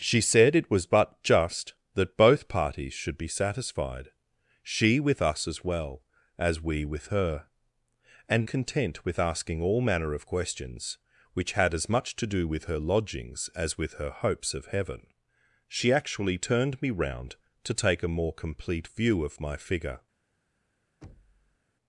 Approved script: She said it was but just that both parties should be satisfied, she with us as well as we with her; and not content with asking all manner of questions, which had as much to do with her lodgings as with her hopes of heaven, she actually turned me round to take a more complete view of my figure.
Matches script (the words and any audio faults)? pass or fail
fail